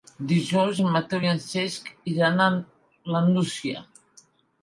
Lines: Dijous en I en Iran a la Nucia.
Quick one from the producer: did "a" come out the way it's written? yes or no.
yes